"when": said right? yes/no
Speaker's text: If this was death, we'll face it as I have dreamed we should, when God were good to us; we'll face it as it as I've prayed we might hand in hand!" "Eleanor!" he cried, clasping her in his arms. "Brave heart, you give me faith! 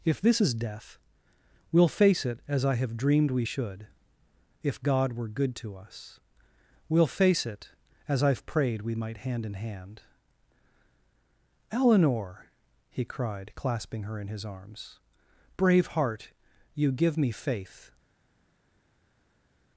no